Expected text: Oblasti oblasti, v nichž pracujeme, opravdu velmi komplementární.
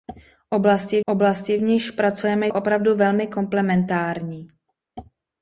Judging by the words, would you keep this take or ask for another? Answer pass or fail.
pass